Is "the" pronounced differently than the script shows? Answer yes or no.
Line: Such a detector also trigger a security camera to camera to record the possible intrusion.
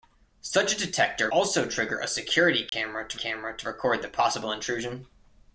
no